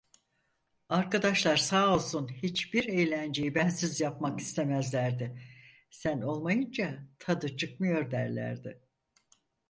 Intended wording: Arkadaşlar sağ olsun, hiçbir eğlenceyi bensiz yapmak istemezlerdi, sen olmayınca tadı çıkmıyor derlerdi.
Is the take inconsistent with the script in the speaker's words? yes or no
no